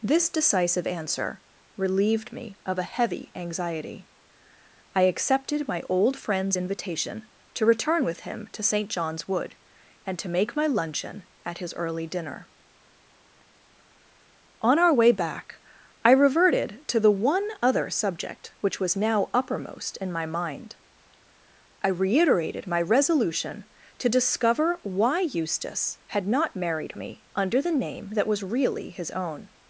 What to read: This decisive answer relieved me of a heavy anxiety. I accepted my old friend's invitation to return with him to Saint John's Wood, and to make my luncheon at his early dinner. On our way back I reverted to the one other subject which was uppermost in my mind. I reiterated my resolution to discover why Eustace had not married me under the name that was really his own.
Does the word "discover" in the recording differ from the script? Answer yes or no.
no